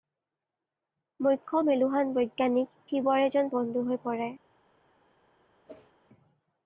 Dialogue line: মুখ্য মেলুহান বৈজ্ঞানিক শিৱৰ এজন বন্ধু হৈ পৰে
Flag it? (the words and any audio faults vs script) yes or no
yes